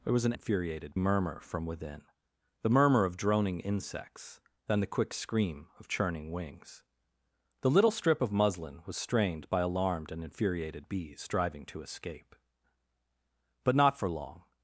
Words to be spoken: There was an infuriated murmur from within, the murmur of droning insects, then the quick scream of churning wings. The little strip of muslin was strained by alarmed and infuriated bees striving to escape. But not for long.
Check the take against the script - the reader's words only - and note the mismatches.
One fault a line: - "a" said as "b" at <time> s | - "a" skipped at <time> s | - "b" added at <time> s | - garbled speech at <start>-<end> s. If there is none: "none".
none